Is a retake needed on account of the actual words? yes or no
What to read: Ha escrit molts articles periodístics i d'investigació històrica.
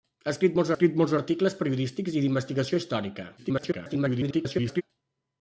yes